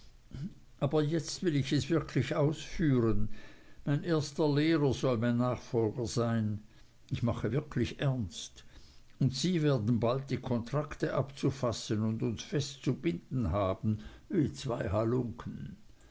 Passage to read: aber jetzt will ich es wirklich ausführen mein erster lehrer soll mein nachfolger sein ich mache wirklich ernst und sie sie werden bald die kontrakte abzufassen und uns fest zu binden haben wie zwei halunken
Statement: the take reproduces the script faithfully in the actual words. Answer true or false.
false